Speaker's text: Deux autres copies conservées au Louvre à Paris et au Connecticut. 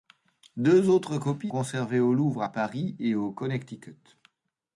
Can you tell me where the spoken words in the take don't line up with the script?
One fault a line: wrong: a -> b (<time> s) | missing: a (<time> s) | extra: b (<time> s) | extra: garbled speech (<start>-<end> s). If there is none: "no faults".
no faults